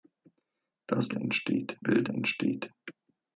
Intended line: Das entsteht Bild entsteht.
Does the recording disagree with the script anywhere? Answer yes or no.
no